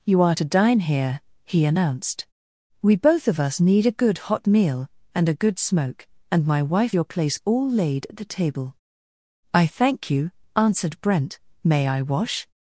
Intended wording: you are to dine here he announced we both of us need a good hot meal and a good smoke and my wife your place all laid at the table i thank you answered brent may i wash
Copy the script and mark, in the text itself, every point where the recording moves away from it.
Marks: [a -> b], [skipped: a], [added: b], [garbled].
you are to dine here he announced we both of us need a good hot meal and a good smoke and my wife your place all laid at the table i thank you answered brent may i wash